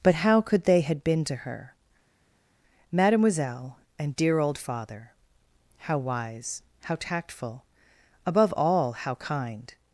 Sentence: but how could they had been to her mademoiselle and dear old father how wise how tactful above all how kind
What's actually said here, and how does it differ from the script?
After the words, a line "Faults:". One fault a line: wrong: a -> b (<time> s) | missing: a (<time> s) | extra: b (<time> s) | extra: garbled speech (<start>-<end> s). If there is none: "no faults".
but how could they had been to her mademoiselle and dear old father how wise how tactful above all how kind
Faults:
no faults